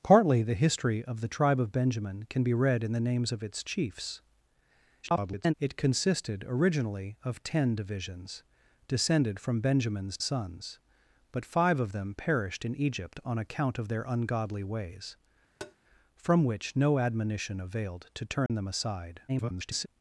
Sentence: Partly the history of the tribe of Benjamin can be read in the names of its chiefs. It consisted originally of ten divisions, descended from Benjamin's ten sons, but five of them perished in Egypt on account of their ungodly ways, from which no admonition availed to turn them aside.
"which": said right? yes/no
yes